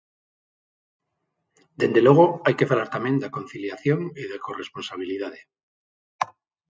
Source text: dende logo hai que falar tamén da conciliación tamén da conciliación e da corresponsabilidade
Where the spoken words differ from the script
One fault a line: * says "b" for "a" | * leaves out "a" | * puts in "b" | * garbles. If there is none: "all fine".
* leaves out "tamén da conciliación"